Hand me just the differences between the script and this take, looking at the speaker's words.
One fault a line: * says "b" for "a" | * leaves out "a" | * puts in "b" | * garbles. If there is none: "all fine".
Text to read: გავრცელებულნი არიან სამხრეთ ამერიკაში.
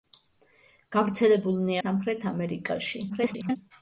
* leaves out "არიან"
* garbles